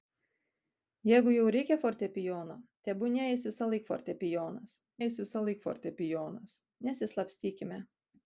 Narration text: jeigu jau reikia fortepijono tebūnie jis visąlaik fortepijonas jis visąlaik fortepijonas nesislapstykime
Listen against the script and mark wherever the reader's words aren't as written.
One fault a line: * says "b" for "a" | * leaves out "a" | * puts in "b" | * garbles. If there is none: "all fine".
all fine